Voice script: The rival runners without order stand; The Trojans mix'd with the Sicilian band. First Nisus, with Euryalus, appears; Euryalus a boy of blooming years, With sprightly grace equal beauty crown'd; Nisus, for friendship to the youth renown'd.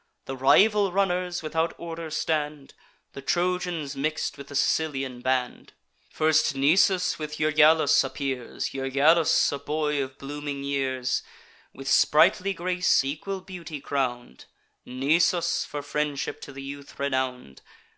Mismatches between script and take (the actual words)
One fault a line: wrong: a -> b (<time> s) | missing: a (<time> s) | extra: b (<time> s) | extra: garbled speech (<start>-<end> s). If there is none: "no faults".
no faults